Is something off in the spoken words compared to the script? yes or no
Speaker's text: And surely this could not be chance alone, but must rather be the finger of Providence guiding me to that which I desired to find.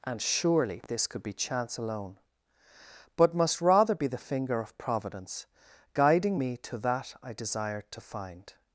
yes